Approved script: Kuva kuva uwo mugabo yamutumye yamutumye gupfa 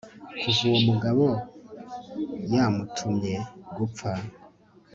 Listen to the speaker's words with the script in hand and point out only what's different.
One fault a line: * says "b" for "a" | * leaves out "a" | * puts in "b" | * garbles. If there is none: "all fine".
* leaves out "kuva"
* leaves out "yamutumye"